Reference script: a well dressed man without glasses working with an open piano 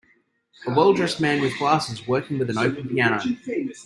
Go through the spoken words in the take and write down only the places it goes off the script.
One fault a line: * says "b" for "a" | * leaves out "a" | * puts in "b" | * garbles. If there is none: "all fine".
* says "with" for "without"